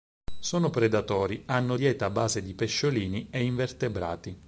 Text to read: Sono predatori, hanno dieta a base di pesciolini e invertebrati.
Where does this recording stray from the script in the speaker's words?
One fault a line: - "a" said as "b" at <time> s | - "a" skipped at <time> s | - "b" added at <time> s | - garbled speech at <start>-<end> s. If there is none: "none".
none